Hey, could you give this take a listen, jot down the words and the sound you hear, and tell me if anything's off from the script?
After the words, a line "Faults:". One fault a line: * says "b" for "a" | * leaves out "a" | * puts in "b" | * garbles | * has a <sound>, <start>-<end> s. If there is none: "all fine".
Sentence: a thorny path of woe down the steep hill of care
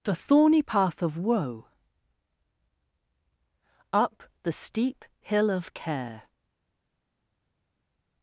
the thorny path of woe up the steep hill of care
Faults:
* says "the" for "a"
* says "up" for "down"